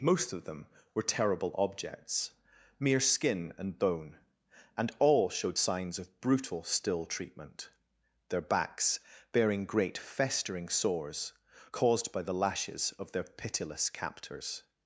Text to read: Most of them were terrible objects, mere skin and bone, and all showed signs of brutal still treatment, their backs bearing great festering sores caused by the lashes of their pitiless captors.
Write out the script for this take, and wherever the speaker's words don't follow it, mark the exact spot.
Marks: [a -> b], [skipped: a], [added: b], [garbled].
Most of them were terrible objects, mere skin and bone, and all showed signs of brutal still treatment, their backs bearing great festering sores caused by the lashes of their pitiless captors.